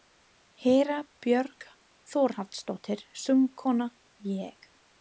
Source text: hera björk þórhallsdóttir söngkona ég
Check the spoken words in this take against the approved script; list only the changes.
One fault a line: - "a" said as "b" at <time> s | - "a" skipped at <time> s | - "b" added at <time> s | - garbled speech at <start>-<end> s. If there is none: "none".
none